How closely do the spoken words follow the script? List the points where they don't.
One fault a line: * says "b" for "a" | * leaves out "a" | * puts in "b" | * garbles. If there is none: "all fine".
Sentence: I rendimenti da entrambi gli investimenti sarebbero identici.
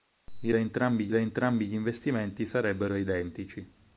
* says "entrambi" for "rendimenti"